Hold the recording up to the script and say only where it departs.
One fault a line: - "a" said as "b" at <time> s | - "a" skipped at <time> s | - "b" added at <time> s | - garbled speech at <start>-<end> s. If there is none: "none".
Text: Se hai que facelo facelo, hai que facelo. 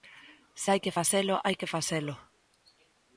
- "facelo" skipped at 1.3 s